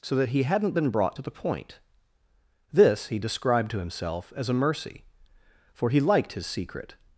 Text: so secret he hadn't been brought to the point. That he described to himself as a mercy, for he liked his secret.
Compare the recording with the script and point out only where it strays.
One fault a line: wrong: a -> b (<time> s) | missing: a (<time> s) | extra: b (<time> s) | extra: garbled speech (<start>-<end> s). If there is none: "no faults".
wrong: secret -> that (0.1 s)
wrong: That -> This (2.7 s)